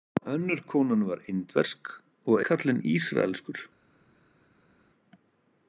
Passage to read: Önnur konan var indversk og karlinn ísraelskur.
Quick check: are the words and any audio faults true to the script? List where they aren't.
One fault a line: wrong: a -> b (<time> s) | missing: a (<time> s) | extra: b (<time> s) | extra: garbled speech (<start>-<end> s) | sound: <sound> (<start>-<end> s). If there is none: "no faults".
no faults